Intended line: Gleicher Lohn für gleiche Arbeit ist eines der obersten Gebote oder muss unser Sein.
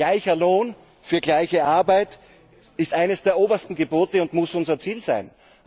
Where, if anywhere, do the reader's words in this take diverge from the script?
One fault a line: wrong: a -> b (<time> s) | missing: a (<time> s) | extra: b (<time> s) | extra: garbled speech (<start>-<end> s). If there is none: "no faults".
wrong: oder -> und (4.2 s)
extra: Ziel (4.8 s)